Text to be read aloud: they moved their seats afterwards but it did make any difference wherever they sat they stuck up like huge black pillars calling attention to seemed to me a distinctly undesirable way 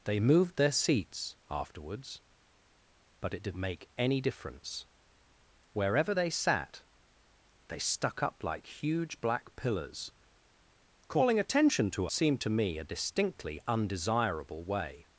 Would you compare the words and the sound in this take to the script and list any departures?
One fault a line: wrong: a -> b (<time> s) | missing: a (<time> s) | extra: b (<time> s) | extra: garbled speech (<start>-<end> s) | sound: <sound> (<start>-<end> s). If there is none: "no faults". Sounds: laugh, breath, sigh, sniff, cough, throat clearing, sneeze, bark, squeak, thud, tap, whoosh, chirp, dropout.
no faults